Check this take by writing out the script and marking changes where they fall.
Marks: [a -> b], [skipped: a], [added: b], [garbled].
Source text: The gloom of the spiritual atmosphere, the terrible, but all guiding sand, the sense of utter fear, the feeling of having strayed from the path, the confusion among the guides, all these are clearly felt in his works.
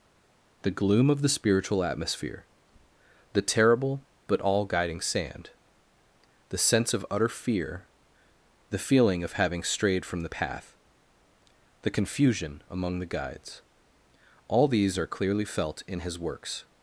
The gloom of the spiritual atmosphere, the terrible, but all guiding sand, the sense of utter fear, the feeling of having strayed from the path, the confusion among the guides, all these are clearly felt in his works.